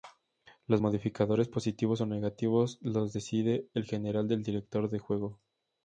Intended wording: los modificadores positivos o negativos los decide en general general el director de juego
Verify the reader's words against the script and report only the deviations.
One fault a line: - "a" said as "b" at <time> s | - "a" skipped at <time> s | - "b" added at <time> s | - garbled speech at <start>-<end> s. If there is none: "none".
- "general" skipped at 4.3 s